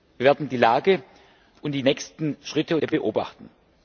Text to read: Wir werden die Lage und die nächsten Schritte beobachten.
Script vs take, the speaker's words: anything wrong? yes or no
no